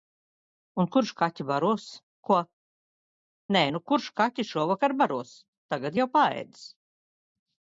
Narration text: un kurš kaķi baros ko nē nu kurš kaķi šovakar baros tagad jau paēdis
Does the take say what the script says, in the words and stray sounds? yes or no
yes